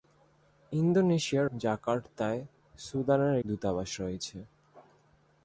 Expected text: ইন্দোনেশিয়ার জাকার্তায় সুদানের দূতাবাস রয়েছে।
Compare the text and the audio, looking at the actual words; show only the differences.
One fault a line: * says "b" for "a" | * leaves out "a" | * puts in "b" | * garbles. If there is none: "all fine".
all fine